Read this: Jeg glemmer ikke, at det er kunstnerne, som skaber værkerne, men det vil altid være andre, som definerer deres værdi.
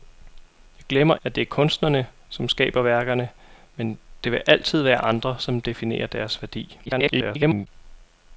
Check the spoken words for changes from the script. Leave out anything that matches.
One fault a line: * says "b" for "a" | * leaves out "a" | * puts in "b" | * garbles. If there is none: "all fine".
* leaves out "ikke"
* garbles